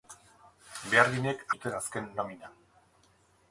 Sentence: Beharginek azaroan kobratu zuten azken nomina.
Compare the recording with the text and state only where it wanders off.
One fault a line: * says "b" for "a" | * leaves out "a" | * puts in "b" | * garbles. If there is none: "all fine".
* leaves out "azaroan kobratu"